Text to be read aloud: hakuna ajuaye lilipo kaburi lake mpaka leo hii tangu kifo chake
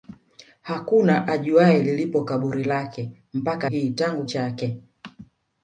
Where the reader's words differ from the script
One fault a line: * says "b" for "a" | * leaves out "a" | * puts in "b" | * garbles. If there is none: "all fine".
* leaves out "leo"
* leaves out "kifo"